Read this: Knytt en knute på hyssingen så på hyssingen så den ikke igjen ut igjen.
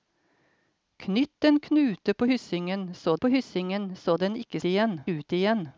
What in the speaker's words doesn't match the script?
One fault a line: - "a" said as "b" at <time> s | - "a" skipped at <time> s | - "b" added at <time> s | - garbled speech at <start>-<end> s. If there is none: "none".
none